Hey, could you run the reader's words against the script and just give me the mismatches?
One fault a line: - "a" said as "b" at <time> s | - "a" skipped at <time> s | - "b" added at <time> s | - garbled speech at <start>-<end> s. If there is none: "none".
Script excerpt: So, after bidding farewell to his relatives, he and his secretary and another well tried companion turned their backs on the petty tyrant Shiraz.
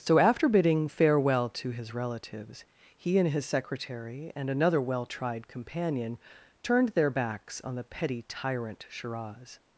none